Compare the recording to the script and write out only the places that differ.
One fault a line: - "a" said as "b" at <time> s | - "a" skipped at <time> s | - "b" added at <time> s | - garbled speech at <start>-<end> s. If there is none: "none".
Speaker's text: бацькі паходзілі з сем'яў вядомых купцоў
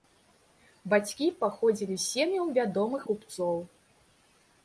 none